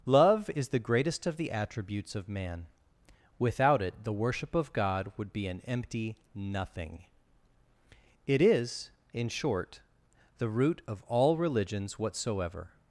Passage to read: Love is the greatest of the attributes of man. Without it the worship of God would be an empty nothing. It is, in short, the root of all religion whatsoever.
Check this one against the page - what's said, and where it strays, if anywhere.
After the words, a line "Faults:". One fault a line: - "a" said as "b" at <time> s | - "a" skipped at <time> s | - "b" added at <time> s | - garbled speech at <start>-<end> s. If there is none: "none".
Love is the greatest of the attributes of man. Without it the worship of God would be an empty nothing. It is, in short, the root of all religions whatsoever.
Faults:
- "religion" said as "religions" at 11.4 s